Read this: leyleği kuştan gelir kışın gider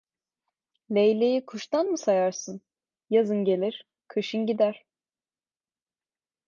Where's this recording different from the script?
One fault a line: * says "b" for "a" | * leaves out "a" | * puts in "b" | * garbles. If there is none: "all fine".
* puts in "mı sayarsın yazın"